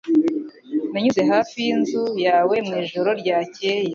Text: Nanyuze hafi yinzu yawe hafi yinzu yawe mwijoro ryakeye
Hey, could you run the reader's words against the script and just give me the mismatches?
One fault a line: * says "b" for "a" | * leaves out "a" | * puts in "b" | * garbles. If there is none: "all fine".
* leaves out "hafi yinzu yawe"